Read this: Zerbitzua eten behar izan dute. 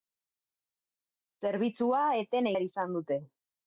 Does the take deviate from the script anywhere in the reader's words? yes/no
no